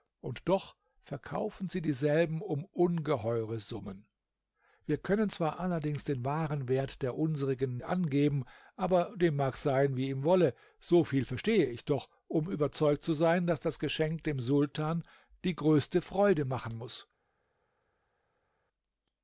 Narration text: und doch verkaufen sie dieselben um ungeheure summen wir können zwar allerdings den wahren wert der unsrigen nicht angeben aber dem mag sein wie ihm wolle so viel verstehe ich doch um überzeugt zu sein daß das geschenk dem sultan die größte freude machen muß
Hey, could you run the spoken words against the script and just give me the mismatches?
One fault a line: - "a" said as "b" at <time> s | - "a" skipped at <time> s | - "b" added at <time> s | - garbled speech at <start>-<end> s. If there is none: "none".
- "nicht" skipped at 7.8 s